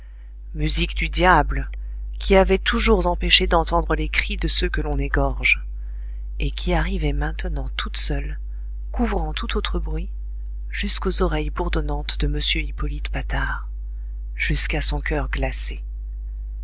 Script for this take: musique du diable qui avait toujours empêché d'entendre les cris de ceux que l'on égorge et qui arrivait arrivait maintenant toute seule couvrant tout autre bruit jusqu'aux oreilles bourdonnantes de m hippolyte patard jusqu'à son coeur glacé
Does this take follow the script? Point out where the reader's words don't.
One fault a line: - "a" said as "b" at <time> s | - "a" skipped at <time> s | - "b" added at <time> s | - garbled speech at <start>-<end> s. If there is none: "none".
- "arrivait" skipped at 7.1 s